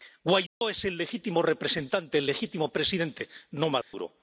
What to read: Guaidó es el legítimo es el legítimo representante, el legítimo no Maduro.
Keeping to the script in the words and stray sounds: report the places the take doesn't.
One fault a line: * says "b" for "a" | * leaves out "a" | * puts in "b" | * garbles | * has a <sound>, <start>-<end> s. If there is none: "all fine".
* has a dropout, 0.5-0.6 s
* says "representante" for "es"
* says "presidente" for "representante el legítimo"
* has a dropout, 3.8-3.9 s